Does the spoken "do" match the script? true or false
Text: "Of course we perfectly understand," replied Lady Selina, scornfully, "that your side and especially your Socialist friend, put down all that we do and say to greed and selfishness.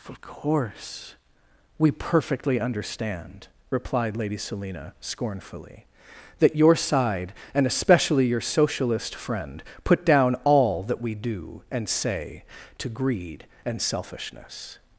true